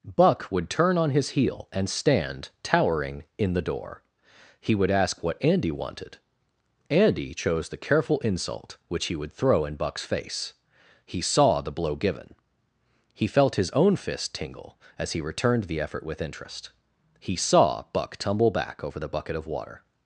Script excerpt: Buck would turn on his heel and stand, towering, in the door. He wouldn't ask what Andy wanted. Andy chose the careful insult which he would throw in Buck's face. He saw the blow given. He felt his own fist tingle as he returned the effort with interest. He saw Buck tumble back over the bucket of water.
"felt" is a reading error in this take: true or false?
false